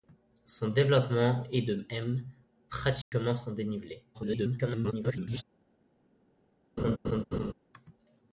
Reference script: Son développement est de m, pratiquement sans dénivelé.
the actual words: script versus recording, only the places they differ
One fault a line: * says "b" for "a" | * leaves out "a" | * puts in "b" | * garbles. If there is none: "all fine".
* garbles